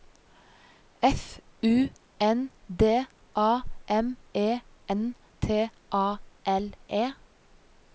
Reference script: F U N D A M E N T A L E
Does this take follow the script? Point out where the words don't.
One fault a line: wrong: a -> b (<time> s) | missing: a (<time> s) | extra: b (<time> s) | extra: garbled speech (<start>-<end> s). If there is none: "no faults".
no faults